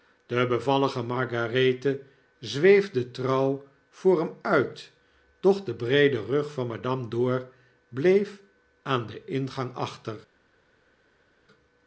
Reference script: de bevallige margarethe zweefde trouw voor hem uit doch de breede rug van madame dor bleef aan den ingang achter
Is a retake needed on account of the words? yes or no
no